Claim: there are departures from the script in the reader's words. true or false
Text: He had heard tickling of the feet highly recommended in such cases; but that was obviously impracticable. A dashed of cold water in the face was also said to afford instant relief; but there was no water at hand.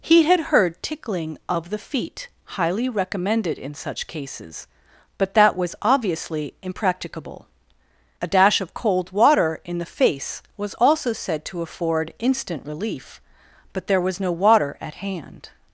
true